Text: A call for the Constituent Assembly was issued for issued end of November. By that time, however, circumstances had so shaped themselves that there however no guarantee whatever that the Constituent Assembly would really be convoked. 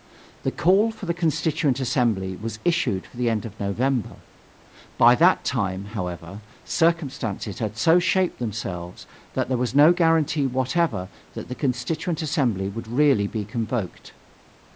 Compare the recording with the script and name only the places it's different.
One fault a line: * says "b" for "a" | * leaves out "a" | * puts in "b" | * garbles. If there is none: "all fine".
* says "The" for "A"
* says "the" for "issued"
* says "was" for "however"